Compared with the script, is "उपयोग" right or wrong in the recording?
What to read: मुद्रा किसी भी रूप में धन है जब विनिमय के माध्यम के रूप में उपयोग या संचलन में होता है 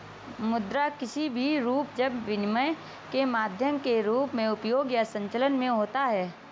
right